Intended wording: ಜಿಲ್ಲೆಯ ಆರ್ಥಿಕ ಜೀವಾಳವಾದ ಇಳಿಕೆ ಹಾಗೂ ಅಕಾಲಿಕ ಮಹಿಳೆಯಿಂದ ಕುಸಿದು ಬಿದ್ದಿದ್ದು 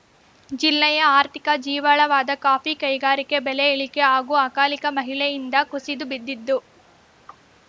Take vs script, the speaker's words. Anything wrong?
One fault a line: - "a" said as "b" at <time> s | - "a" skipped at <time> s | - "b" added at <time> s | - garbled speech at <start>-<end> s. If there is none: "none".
- "ಕಾಫಿ ಕೈಗಾರಿಕೆ ಬೆಲೆ" added at 2.4 s